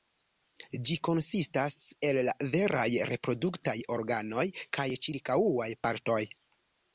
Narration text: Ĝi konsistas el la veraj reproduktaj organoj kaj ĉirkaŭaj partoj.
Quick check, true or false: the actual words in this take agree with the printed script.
true